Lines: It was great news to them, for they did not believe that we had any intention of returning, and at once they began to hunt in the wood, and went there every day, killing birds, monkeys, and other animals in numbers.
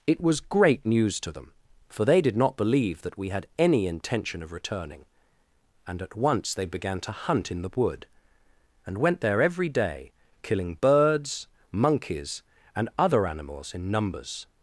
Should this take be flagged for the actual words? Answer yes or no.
no